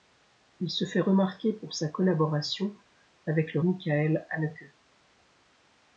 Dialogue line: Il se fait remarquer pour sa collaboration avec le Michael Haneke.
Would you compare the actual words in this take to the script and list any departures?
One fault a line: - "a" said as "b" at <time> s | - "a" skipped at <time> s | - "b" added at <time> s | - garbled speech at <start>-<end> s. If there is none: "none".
none